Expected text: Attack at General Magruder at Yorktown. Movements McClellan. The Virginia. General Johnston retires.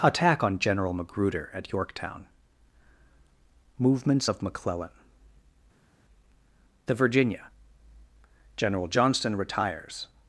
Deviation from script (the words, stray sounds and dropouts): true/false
true